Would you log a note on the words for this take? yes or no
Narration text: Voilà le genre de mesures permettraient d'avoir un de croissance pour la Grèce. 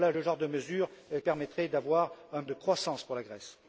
no